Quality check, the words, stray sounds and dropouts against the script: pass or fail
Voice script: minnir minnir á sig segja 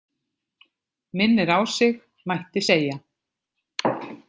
fail